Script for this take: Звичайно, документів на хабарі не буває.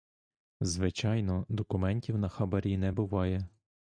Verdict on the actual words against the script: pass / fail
pass